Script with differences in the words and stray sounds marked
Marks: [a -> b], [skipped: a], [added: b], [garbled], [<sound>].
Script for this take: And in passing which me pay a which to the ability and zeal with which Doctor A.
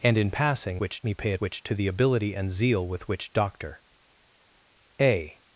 And in passing which me pay a which to the ability and zeal with which Doctor A.